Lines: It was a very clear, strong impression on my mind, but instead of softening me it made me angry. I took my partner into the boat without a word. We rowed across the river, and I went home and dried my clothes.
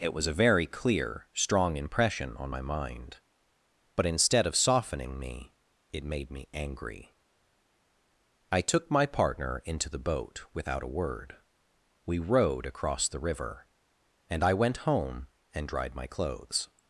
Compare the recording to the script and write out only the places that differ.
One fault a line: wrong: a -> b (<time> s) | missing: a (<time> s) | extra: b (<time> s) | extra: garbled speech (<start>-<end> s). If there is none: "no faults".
no faults